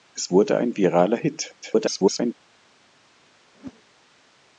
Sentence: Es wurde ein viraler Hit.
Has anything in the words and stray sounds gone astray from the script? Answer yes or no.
yes